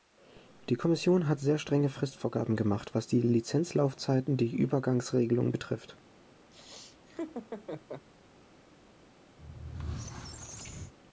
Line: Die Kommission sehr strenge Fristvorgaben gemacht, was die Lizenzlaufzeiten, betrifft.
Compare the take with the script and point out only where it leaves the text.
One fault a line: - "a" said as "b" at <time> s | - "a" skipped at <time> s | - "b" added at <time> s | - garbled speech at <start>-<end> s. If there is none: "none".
- "hat" added at 1.3 s
- "die Übergangsregelungen" added at 4.3 s